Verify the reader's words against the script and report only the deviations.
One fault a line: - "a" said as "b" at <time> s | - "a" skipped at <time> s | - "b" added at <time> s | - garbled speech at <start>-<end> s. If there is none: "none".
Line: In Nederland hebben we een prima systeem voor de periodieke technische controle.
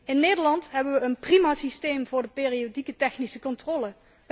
none